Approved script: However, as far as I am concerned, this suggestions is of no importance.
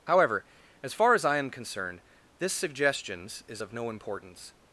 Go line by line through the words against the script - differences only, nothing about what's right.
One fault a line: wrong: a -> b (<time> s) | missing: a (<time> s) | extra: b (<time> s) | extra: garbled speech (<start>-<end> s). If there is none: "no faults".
no faults